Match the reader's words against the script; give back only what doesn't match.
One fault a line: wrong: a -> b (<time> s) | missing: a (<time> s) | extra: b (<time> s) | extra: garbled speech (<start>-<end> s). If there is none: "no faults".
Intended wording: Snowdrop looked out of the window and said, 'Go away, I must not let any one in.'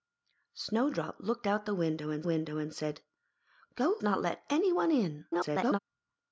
extra: window and (2.2 s)
missing: away I must (4.0 s)
extra: garbled speech (5.3-5.8 s)